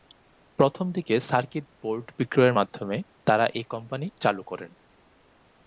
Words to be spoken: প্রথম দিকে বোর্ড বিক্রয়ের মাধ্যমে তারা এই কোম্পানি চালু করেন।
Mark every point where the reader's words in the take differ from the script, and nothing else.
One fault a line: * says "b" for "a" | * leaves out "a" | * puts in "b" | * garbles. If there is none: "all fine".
* puts in "সার্কিট"